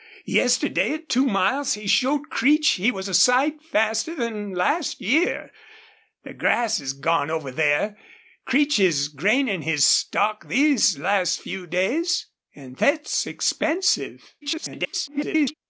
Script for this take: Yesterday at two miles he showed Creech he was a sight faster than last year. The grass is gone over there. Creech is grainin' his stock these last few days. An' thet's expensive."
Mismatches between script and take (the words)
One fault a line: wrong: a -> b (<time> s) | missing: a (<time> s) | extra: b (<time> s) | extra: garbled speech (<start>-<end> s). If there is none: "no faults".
extra: garbled speech (14.4-15.5 s)